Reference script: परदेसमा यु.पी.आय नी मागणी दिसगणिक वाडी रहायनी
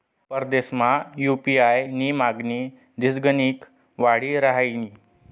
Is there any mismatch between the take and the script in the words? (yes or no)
no